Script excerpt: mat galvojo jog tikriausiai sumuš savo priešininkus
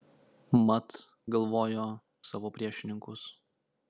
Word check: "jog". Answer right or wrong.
wrong